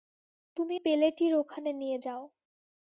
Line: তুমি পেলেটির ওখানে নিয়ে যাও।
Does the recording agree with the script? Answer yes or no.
yes